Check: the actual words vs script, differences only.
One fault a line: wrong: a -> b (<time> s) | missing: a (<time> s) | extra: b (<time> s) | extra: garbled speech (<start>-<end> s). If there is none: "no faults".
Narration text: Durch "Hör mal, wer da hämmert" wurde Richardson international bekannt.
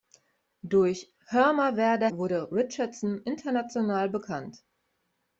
missing: hämmert (2.1 s)